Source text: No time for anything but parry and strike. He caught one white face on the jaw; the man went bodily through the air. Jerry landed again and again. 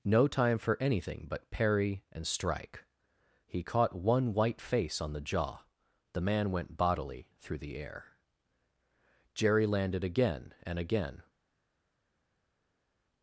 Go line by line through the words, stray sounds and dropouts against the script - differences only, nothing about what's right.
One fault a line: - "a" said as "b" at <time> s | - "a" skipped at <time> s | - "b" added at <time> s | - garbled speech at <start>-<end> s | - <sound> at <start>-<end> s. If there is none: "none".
none